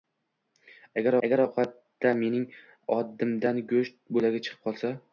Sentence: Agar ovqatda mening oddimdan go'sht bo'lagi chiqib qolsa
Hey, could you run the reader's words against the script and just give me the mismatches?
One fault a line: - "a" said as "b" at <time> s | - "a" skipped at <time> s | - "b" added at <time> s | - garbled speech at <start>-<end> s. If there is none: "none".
- "agar" added at 1.3 s